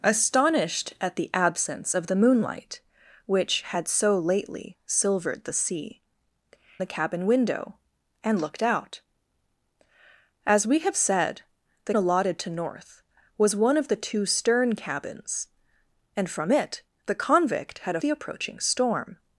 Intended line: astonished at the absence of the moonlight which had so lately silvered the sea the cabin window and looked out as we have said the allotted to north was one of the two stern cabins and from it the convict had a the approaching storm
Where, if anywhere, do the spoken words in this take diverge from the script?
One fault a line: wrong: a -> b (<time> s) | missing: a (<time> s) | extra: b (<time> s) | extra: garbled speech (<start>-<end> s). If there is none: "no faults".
no faults